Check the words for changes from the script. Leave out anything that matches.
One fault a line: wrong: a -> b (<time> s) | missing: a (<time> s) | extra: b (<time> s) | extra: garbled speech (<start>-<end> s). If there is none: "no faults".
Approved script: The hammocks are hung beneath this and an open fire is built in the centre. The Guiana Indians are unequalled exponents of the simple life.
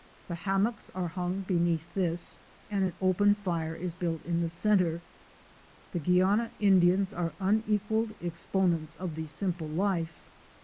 no faults